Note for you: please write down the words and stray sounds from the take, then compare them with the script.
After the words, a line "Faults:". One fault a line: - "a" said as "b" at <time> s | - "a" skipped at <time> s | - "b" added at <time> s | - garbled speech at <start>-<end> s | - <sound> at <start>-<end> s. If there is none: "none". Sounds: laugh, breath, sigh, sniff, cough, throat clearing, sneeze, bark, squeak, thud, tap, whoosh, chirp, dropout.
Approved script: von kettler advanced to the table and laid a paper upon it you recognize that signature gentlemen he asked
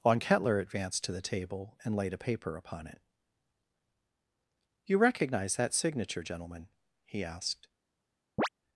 von kettler advanced to the table and laid a paper upon it you recognize that signature gentlemen he asked
Faults:
- chirp at 8.4-8.5 s